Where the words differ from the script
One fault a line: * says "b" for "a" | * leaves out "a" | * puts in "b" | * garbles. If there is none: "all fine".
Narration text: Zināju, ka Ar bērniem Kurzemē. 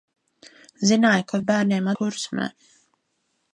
all fine